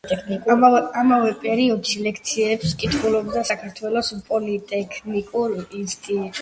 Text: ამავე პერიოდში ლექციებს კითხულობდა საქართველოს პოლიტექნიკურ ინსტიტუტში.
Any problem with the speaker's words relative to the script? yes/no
no